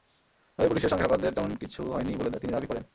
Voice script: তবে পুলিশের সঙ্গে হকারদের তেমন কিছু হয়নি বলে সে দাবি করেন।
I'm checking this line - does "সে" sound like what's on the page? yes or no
no